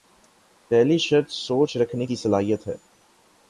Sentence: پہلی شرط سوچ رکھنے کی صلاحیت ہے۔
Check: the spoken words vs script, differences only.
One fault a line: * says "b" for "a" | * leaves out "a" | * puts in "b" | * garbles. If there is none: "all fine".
all fine